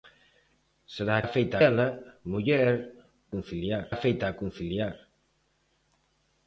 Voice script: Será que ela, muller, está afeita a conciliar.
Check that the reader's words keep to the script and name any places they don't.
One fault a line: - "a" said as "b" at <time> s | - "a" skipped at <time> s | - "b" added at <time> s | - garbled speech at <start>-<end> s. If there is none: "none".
- "que" said as "afeita" at 1.2 s
- "está" said as "conciliar" at 3.3 s